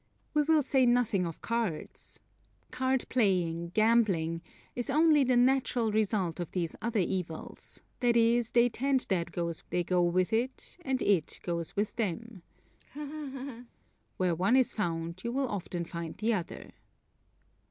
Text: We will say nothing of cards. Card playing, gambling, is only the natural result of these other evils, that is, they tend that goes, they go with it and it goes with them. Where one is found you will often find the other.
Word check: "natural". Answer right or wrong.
right